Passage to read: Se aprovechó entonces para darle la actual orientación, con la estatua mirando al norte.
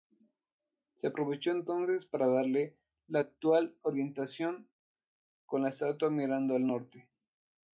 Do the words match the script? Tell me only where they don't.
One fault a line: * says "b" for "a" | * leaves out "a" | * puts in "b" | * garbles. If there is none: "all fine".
all fine